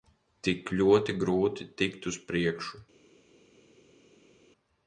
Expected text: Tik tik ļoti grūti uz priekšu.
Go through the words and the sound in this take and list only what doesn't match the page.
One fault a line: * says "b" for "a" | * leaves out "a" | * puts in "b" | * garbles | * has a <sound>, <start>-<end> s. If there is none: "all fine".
* leaves out "tik"
* puts in "tikt"